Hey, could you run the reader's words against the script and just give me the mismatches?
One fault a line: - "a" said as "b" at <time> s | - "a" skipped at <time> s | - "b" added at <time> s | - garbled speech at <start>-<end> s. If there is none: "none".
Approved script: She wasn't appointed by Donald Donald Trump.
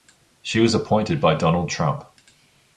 - "wasn't" said as "was" at 0.6 s
- "Donald" skipped at 1.7 s